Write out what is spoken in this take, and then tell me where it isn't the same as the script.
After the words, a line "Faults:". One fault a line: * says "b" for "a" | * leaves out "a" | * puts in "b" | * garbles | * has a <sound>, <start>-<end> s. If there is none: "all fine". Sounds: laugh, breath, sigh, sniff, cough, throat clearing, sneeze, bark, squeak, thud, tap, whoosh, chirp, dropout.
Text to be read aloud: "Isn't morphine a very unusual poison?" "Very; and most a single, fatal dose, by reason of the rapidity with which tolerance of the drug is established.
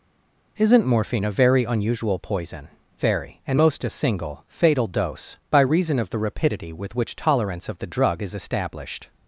"Isn't morphine a very unusual poison?" "Very; and most a single, fatal dose, by reason of the rapidity with which tolerance of the drug is established.
Faults:
all fine